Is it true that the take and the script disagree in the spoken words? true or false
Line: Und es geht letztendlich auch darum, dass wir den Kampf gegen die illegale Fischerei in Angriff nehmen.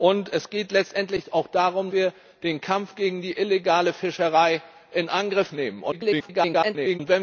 true